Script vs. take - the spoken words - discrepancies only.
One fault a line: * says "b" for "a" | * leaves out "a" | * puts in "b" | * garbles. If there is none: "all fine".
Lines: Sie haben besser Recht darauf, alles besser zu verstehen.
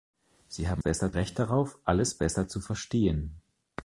all fine